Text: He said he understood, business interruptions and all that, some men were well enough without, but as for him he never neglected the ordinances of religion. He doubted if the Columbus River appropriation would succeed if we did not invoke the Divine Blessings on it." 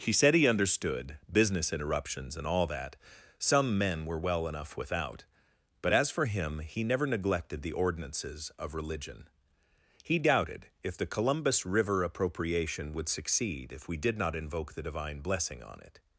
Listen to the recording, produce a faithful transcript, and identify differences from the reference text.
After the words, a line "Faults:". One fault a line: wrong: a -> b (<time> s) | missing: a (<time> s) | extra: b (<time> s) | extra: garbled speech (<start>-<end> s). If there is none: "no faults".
He said he understood, business interruptions and all that, some men were well enough without, but as for him he never neglected the ordinances of religion. He doubted if the Columbus River appropriation would succeed if we did not invoke the Divine Blessing on it."
Faults:
wrong: Blessings -> Blessing (15.2 s)